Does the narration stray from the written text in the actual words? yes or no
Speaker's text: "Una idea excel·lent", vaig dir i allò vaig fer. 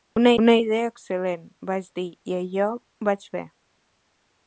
yes